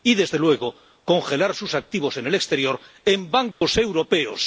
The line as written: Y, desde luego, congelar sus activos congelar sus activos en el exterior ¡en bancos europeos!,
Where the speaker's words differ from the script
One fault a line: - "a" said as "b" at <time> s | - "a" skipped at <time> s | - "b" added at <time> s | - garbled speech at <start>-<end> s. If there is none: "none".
- "congelar sus activos" skipped at 2.2 s